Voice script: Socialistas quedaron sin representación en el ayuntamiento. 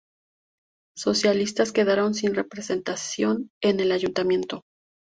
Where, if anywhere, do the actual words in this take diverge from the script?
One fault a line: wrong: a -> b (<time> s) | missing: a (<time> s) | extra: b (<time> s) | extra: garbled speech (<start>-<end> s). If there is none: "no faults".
no faults